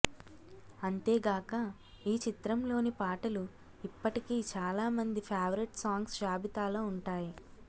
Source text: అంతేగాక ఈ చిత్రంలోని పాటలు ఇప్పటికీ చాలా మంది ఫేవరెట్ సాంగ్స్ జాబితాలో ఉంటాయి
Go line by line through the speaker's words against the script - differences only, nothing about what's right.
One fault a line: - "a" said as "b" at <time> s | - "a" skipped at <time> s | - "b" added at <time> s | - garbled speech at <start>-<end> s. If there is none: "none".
none